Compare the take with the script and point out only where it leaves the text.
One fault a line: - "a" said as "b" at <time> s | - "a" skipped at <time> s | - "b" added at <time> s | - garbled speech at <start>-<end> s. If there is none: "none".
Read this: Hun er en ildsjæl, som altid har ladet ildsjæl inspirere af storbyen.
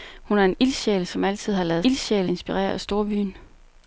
none